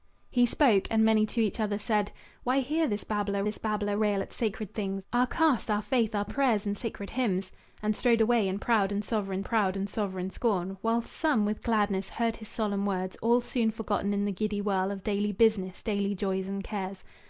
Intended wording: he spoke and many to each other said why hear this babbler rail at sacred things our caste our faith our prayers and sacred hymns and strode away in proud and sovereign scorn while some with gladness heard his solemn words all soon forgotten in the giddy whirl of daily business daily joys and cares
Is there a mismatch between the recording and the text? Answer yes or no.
yes